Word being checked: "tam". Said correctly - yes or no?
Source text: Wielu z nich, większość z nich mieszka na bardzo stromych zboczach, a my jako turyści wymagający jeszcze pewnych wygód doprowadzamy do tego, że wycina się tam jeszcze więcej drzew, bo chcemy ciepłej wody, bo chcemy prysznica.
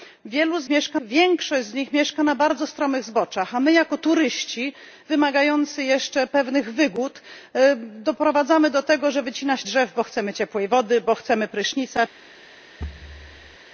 no